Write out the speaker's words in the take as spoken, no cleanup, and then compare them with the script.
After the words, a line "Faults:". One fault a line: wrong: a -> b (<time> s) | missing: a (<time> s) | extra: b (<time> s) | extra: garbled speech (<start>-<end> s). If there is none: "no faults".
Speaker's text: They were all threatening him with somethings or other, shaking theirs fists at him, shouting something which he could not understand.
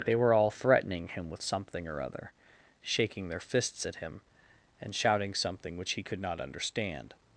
They were all threatening him with something or other, shaking their fists at him, and shouting something which he could not understand.
Faults:
wrong: somethings -> something (1.4 s)
wrong: theirs -> their (3.3 s)
extra: and (4.8 s)